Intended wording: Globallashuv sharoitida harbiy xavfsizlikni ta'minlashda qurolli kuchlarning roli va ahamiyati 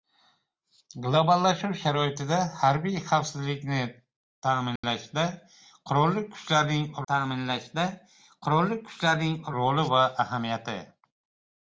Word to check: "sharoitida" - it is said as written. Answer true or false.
true